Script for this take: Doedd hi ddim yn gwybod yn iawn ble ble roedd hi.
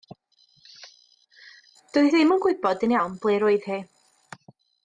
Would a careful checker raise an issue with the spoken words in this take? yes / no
yes